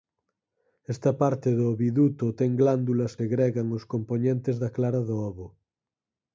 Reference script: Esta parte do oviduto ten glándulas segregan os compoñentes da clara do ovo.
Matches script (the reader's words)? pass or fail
pass